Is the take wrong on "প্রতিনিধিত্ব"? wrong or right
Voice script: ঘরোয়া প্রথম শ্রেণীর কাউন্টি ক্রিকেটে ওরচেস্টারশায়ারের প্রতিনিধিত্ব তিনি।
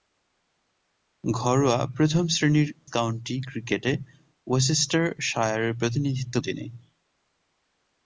right